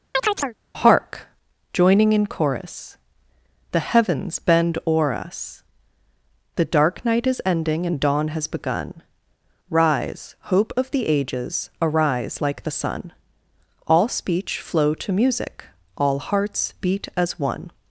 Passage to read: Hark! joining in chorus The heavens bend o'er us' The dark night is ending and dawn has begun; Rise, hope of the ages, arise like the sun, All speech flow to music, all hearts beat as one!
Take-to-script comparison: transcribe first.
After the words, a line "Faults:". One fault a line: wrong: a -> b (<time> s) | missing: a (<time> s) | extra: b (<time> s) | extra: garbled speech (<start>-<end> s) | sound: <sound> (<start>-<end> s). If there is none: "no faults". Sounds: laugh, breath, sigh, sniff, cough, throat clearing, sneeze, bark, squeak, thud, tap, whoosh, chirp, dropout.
Hark! joining in chorus The heavens bend o'er us' The dark night is ending and dawn has begun; Rise, hope of the ages, arise like the sun, All speech flow to music, all hearts beat as one!
Faults:
sound: chirp (0.1-0.6 s)